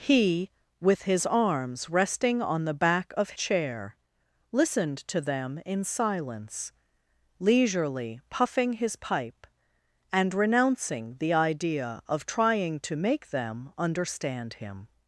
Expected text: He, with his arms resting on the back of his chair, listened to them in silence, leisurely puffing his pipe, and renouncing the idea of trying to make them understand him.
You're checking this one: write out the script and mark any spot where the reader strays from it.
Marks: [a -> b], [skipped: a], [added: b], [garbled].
He, with his arms resting on the back of [skipped: his] chair, listened to them in silence, leisurely puffing his pipe, and renouncing the idea of trying to make them understand him.